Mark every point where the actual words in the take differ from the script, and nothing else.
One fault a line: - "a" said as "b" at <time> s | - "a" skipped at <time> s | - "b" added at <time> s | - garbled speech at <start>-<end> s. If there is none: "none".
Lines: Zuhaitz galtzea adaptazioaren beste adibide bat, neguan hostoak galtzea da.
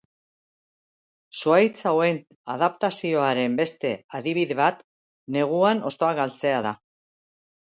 - "galtzea" said as "hauen" at 1.9 s